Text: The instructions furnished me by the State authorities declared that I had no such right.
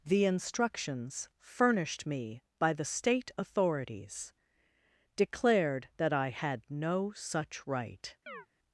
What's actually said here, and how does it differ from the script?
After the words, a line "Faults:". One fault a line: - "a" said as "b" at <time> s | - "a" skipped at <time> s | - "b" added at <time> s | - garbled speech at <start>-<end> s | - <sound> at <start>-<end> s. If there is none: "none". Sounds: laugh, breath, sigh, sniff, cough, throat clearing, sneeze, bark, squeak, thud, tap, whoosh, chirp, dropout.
The instructions furnished me by the State authorities declared that I had no such right.
Faults:
- chirp at 8.3-8.5 s